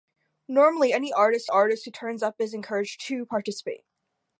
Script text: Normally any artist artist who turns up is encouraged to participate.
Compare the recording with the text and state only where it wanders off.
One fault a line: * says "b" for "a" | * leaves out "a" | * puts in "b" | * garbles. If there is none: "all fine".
all fine